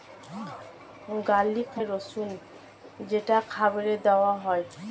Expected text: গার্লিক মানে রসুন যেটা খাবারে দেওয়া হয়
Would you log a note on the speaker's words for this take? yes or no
yes